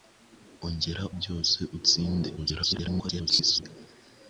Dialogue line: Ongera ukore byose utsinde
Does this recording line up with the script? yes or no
no